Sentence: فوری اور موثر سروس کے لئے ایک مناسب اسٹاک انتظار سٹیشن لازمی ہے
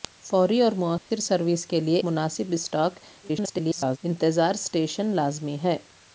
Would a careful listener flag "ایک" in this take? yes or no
yes